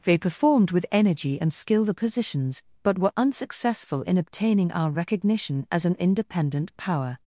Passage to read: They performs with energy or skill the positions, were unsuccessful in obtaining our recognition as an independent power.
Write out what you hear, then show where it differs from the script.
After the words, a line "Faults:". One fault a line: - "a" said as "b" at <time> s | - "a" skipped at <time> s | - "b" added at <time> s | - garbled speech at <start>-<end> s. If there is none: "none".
They performed with energy and skill the positions, but were unsuccessful in obtaining our recognition as an independent power.
Faults:
- "performs" said as "performed" at 0.2 s
- "or" said as "and" at 1.4 s
- "but" added at 2.8 s